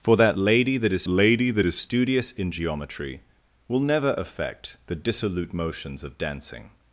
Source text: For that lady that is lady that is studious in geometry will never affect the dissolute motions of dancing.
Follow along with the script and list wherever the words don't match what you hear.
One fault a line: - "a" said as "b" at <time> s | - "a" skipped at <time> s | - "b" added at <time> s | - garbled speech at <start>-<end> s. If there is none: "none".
none